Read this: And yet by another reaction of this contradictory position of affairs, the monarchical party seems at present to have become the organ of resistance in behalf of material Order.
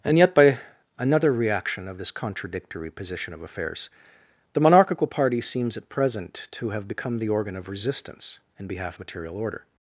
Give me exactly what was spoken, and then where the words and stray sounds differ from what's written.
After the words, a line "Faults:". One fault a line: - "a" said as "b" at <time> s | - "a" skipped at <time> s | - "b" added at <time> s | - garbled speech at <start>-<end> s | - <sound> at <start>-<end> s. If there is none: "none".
And yet by another reaction of this contradictory position of affairs, the monarchical party seems at present to have become the organ of resistance in behalf material Order.
Faults:
- "of" skipped at 9.0 s